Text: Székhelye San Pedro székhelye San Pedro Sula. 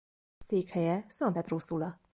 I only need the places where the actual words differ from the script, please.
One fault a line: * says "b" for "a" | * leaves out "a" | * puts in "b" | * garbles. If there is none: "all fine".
* leaves out "székhelye San Pedro"